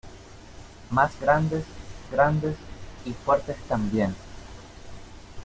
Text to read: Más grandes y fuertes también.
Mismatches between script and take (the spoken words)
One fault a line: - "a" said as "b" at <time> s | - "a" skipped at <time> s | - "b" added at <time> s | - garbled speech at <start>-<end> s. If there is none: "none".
- "grandes" added at 2.1 s